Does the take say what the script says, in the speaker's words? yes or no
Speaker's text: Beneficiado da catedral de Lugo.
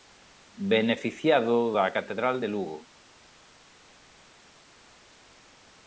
yes